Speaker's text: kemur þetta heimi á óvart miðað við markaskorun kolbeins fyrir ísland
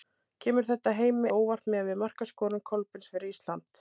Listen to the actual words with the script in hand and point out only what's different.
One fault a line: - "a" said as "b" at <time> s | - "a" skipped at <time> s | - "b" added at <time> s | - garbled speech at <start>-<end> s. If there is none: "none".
none